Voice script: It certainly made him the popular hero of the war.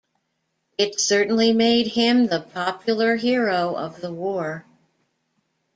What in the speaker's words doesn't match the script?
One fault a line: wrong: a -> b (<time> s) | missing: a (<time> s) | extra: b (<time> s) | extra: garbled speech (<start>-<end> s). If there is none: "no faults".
no faults